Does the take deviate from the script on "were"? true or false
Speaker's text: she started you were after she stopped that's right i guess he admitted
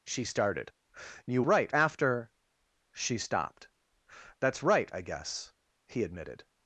true